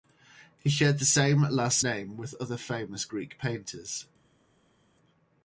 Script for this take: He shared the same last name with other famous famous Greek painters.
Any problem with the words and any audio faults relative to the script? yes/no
yes